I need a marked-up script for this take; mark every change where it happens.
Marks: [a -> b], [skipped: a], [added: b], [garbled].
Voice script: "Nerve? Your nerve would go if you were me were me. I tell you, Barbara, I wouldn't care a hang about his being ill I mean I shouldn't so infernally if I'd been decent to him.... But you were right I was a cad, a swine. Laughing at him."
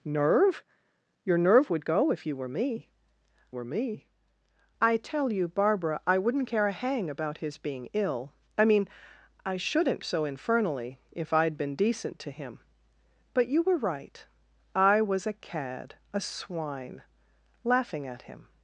"Nerve? Your nerve would go if you were me were me. I tell you, Barbara, I wouldn't care a hang about his being ill I mean I shouldn't so infernally if I'd been decent to him.... But you were right I was a cad, a swine. Laughing at him."